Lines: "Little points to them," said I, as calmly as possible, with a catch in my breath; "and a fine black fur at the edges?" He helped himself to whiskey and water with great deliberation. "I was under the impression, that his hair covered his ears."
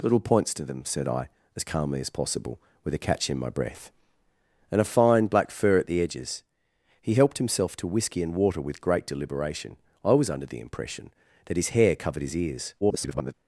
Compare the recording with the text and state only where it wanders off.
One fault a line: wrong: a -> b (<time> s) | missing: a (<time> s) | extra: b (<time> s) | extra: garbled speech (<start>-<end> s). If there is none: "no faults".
extra: garbled speech (12.8-13.3 s)